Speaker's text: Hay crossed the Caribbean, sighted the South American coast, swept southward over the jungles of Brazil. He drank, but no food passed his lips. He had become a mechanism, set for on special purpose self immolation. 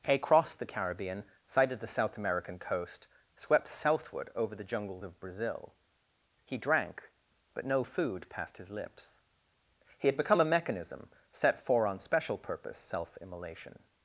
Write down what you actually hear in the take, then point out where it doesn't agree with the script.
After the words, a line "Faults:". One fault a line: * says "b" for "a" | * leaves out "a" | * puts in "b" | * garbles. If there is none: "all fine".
Hay crossed the Caribbean, sighted the South American coast, swept southward over the jungles of Brazil. He drank, but no food passed his lips. He had become a mechanism, set for on special purpose self immolation.
Faults:
all fine